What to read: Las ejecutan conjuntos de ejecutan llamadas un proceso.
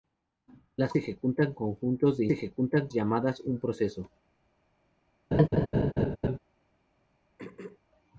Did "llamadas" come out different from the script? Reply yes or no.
no